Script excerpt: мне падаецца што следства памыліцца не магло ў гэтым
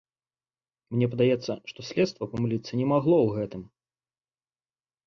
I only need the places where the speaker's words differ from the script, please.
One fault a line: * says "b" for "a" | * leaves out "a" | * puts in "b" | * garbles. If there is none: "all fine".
all fine